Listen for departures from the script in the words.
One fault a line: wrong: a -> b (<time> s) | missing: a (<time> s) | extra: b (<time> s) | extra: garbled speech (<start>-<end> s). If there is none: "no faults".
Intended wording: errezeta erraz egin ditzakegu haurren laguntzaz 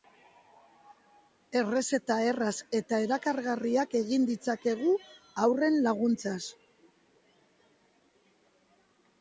extra: eta erakargarriak (2.8 s)